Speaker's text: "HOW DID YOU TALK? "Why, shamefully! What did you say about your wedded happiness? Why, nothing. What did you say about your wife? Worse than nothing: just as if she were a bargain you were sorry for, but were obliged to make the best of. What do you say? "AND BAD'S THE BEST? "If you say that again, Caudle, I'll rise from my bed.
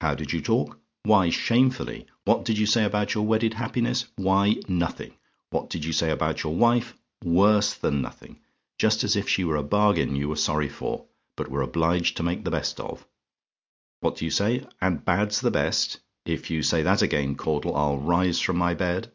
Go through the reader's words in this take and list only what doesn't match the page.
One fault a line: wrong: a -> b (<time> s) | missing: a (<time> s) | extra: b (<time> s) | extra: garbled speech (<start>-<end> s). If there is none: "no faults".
no faults